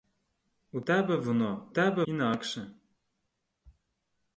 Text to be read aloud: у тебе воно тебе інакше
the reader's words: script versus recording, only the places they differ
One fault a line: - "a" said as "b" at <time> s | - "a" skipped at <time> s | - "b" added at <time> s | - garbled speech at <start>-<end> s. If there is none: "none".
none